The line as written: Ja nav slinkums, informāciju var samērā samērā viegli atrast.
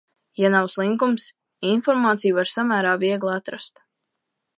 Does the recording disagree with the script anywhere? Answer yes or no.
yes